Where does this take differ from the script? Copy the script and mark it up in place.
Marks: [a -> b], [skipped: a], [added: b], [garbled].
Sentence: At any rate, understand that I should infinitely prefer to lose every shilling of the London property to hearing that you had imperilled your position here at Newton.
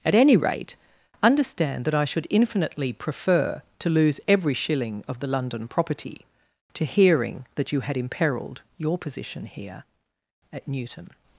At any rate, understand that I should infinitely prefer to lose every shilling of the London property to hearing that you had imperilled your position here at Newton.